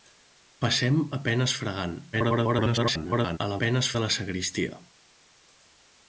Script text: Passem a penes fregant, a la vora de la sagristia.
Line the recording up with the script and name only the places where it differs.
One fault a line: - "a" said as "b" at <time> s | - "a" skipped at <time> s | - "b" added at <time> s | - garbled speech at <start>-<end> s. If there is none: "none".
- garbled speech at 2.1-3.4 s
- "vora" said as "penes" at 3.6 s